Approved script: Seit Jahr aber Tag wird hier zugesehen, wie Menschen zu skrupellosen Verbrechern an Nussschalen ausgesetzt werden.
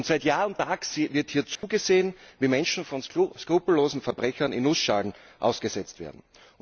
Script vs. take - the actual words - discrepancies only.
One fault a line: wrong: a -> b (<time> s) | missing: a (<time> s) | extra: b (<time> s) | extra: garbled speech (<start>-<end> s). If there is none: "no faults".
wrong: aber -> und (0.5 s)
wrong: zu -> von (2.8 s)
wrong: an -> in (4.5 s)